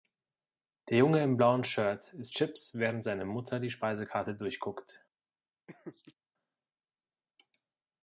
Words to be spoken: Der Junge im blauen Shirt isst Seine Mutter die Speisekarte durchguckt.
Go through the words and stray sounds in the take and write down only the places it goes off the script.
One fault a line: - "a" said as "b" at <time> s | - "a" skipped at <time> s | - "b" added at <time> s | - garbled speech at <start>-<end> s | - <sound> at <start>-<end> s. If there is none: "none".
- "Chips während" added at 2.3 s
- laugh at 5.7-6.1 s